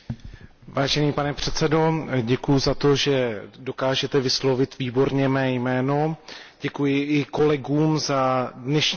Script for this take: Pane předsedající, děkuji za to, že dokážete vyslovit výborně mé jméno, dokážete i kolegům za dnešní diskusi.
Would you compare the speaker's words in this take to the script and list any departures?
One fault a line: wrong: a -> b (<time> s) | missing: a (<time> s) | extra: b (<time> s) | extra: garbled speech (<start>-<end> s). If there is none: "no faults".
wrong: dokážete -> děkuji (6.6 s)